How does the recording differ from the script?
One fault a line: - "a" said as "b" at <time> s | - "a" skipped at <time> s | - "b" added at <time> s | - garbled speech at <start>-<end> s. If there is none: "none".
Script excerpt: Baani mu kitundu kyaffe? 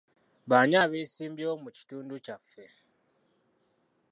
- "abeesimbyewo" added at 0.8 s